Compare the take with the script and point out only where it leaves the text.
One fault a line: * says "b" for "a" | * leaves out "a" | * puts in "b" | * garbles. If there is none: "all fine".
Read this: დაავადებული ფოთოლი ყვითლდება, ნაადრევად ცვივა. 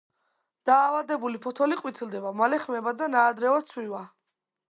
* puts in "მალე ხმება და"